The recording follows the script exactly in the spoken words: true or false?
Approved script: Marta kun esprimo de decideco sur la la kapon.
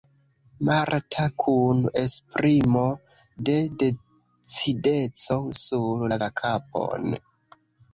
true